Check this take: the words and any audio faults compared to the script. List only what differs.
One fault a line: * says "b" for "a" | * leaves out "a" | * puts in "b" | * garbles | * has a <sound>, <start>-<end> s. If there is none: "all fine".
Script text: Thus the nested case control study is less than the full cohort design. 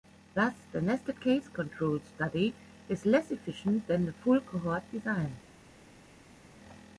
* puts in "efficient"